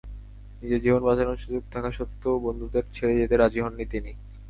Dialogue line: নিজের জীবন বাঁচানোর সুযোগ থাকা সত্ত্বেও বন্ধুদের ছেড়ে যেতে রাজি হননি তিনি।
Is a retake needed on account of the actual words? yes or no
no